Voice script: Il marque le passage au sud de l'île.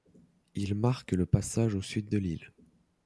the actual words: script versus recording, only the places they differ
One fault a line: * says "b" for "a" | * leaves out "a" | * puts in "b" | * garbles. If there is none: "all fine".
all fine